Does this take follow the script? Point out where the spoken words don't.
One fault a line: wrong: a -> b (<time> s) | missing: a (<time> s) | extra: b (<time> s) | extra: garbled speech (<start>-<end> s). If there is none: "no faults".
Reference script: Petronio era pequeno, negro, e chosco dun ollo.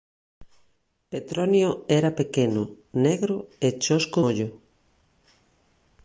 missing: dun (4.2 s)